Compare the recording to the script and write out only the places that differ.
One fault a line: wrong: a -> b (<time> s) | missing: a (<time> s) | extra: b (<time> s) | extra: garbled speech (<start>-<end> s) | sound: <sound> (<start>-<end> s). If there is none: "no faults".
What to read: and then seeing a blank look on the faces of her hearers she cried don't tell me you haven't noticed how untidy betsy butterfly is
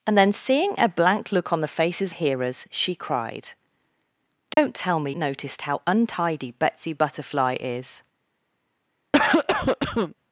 missing: of her (2.1 s)
sound: dropout (4.5-4.6 s)
missing: you haven't (5.1 s)
sound: cough (9.1-10.2 s)